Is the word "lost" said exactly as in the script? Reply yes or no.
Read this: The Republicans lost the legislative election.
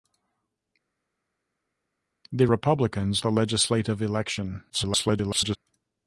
no